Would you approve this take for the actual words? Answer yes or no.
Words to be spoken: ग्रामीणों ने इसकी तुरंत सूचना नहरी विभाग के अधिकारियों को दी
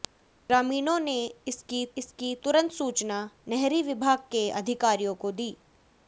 no